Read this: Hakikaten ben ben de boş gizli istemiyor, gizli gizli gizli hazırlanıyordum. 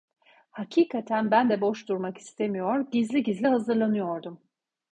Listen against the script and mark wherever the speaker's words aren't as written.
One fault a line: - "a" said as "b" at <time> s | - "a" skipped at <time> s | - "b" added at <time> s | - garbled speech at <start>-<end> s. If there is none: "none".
- "ben" skipped at 1.5 s
- "gizli" said as "durmak" at 1.9 s
- "gizli" skipped at 3.5 s